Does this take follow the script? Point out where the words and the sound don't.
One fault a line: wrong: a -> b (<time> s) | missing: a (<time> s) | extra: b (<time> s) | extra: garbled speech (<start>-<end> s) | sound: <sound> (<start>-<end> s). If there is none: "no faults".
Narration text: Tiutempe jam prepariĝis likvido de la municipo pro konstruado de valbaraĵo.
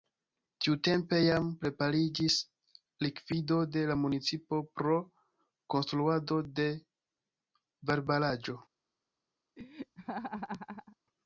sound: laugh (9.6-11.0 s)